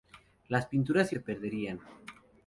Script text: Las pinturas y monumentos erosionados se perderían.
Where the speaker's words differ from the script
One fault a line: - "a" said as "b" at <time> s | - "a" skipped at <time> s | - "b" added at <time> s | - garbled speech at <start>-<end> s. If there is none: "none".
- "monumentos erosionados" skipped at 1.1 s